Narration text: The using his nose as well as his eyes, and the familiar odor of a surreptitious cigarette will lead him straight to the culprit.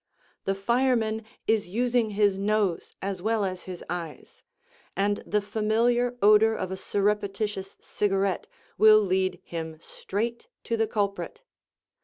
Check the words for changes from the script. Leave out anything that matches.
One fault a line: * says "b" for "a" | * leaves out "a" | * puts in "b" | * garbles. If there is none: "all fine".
* puts in "fireman is"